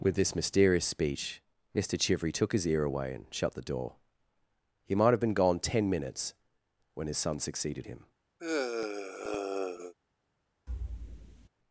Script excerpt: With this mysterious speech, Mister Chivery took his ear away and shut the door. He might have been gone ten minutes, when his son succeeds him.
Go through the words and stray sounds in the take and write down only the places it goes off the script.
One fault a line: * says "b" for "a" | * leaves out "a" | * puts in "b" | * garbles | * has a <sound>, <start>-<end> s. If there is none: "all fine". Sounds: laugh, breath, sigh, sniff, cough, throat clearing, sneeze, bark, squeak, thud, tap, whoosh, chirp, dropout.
* says "succeeded" for "succeeds"
* has a sigh, 8.4-9.9 s
* has a thud, 10.7-11.5 s